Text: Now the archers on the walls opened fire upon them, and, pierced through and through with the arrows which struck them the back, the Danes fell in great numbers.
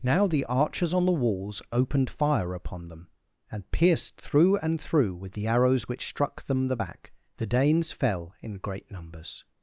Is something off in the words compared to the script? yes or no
no